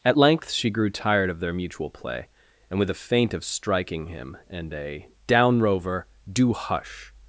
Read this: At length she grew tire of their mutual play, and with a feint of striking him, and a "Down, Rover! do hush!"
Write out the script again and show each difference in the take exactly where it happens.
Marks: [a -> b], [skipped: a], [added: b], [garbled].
At length she grew [tire -> tired] of their mutual play, and with a feint of striking him, and a "Down, Rover! do hush!"